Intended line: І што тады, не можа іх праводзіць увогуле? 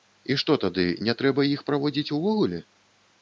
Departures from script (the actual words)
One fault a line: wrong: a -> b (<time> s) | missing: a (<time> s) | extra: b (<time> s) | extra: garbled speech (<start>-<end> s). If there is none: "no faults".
wrong: можа -> трэба (1.2 s)